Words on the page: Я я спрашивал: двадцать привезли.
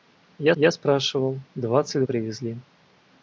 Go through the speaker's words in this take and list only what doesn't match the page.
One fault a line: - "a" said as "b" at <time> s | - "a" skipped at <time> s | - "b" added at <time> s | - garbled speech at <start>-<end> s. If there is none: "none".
none